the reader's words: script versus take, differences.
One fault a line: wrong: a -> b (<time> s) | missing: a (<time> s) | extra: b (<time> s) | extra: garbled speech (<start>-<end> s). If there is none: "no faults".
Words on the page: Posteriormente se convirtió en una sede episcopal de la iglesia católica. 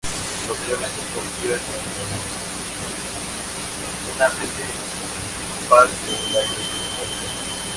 no faults